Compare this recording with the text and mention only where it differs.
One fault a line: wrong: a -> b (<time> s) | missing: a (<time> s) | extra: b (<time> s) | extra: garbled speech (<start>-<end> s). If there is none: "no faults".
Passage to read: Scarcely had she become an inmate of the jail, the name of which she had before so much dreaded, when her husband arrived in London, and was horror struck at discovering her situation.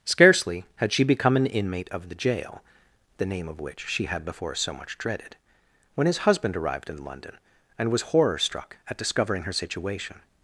wrong: her -> his (6.1 s)